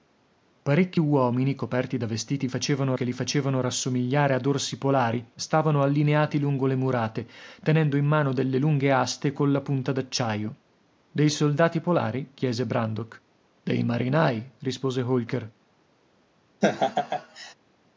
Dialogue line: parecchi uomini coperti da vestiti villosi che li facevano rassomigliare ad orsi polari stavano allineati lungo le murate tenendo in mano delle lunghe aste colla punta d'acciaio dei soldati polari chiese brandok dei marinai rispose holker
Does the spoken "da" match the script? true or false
true